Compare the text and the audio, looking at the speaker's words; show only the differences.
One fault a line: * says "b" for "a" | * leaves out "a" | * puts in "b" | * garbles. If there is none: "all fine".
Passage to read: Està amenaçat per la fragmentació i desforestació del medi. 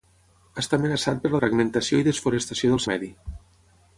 all fine